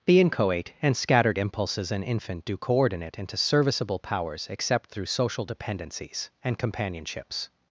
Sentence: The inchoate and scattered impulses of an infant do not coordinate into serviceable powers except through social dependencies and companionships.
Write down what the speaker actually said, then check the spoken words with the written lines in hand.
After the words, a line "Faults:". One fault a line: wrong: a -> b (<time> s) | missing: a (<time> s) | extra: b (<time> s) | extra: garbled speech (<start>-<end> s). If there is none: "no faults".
The inchoate and scattered impulses an infant do coordinate into serviceable powers except through social dependencies and companionships.
Faults:
missing: of (1.9 s)
missing: not (2.6 s)